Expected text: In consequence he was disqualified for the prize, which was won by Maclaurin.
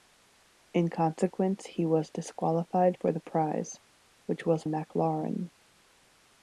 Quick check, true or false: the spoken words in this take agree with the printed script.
false